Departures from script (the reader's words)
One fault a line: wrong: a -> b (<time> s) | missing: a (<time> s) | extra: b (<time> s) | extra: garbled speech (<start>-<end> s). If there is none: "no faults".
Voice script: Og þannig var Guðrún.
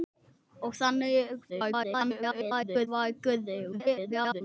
extra: garbled speech (1.5-2.9 s)
extra: garbled speech (3.7-4.4 s)